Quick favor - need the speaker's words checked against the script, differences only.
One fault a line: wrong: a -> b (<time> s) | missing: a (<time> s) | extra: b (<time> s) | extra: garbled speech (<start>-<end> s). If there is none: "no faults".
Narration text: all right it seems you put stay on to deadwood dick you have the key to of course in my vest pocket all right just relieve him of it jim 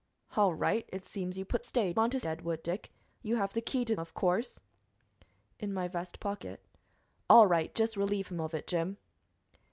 no faults